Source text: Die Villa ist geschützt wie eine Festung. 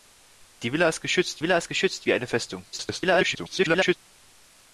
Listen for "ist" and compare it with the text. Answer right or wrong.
right